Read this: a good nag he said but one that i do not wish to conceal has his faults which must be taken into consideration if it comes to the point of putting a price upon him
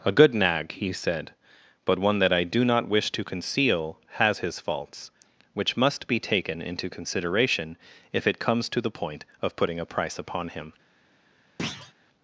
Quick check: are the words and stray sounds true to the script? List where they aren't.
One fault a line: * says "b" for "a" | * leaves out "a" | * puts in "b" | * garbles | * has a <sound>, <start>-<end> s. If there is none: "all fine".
* has a thud, 11.6-11.9 s